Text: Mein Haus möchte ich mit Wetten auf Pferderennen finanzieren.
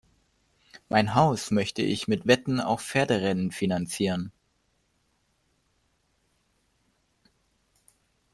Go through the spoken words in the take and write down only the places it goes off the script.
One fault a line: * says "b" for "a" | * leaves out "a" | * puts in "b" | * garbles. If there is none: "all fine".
all fine